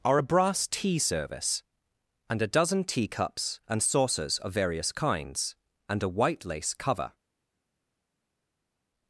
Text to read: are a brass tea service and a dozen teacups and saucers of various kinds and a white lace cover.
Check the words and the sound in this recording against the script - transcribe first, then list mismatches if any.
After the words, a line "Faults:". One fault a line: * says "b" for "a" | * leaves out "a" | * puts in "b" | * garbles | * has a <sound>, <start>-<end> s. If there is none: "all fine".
are a brass tea service and a dozen teacups and saucers of various kinds and a white lace cover.
Faults:
all fine